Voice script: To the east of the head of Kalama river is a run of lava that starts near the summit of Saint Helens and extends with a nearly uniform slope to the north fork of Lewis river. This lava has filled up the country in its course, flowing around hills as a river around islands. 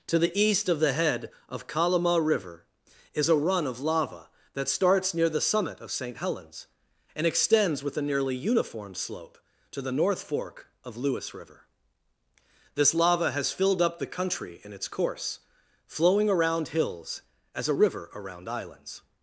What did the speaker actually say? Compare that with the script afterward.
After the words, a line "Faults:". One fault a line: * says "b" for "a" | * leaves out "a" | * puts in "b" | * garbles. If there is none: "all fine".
To the east of the head of Kalama river is a run of lava that starts near the summit of Saint Helens and extends with a nearly uniform slope to the north fork of Lewis river. This lava has filled up the country in its course, flowing around hills as a river around islands.
Faults:
all fine